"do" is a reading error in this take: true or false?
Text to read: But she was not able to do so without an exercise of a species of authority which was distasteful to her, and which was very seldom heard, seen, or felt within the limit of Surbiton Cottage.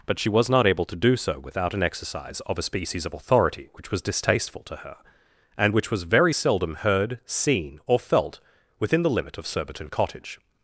false